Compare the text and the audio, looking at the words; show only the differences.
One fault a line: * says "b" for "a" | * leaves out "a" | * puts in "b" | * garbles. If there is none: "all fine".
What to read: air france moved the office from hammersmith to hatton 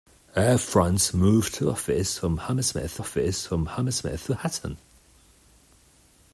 * puts in "office from hammersmith"